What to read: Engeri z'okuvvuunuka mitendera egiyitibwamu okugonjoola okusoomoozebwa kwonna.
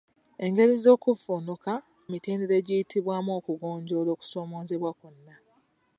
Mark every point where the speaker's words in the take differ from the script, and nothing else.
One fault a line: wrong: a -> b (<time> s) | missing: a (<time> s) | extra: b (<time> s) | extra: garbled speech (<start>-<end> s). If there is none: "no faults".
no faults